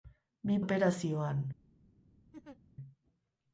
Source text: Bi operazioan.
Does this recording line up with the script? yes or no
yes